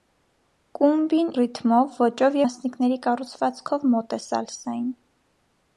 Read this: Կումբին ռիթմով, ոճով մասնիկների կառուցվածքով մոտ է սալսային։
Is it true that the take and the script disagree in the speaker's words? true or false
false